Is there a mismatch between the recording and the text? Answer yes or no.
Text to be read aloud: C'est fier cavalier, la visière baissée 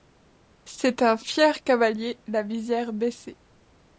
yes